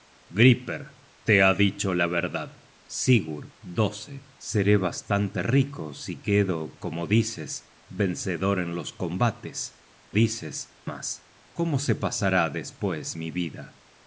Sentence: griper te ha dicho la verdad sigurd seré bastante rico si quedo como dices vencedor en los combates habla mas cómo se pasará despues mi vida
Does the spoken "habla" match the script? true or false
false